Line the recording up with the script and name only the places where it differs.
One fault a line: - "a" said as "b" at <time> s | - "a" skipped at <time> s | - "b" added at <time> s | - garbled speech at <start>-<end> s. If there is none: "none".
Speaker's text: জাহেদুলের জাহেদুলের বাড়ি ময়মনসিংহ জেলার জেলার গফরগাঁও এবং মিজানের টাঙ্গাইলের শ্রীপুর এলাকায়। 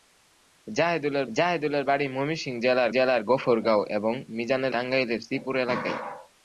none